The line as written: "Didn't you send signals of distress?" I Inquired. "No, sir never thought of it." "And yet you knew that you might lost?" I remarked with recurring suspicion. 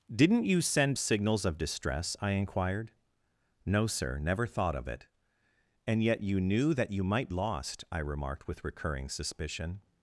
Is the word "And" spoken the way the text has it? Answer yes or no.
yes